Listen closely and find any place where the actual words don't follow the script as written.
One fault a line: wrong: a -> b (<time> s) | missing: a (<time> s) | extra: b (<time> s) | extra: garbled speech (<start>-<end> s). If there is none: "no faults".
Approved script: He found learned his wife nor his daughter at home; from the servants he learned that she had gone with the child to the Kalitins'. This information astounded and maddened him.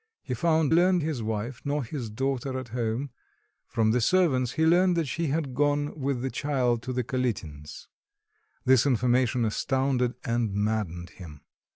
no faults